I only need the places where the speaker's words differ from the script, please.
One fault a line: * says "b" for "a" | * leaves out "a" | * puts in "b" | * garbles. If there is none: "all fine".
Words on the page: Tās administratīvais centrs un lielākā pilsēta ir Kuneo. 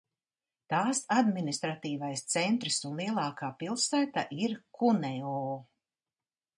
all fine